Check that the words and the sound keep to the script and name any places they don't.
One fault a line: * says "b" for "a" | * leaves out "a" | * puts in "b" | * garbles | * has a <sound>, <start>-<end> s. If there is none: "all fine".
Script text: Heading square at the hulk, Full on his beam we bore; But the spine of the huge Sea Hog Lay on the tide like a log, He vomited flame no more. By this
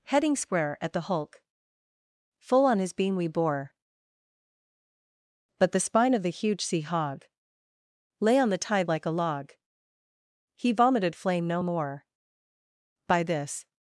all fine